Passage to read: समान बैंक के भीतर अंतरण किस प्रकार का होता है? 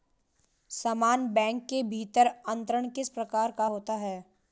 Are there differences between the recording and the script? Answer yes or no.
no